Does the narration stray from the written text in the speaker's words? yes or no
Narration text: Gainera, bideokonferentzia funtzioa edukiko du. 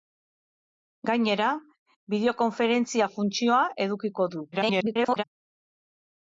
yes